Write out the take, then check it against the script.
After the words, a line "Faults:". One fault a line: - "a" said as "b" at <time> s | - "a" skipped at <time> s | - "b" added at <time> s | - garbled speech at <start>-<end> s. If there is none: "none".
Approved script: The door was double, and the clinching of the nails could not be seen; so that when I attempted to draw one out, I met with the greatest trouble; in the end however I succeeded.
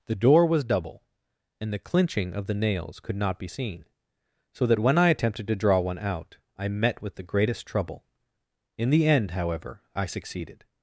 The door was double, and the clinching of the nails could not be seen; so that when I attempted to draw one out, I met with the greatest trouble; in the end however I succeeded.
Faults:
none